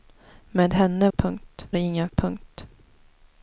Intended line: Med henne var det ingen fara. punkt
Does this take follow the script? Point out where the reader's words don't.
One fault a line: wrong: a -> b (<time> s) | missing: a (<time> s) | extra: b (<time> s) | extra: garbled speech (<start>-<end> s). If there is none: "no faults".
wrong: var -> punkt (1.2 s)
missing: fara (2.1 s)